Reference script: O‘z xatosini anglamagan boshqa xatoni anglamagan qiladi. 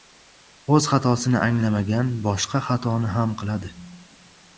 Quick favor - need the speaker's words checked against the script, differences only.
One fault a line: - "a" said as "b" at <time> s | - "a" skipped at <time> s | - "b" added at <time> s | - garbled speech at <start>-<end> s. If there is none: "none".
- "anglamagan" said as "ham" at 3.2 s